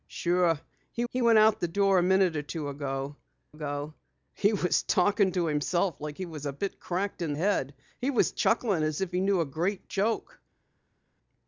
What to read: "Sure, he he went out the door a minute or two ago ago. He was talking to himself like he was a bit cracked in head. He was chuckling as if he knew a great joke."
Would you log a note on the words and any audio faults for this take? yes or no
no